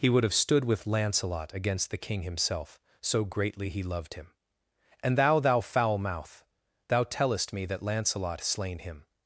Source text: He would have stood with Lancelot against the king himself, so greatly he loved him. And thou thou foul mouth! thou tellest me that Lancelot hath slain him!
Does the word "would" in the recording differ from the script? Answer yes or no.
no